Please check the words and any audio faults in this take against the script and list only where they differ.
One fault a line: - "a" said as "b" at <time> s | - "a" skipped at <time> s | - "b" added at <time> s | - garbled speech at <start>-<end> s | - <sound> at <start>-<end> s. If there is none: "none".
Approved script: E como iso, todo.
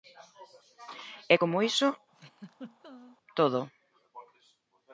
- laugh at 2.1-3.2 s